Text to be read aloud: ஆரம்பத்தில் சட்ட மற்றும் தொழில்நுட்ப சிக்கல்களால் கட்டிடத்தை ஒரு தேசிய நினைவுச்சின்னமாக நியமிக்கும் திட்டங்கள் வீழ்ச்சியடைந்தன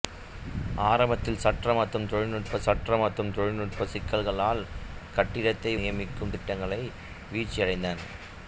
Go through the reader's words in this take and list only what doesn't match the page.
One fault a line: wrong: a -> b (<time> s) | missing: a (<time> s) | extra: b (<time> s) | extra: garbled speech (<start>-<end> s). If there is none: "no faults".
wrong: சிக்கல்களால் கட்டிடத்தை ஒரு தேசிய நினைவுச்சின்னமாக -> சட்ட மற்றும் தொழில்நுட்ப சிக்கல்களால் கட்டிடத்தை (2.6 s)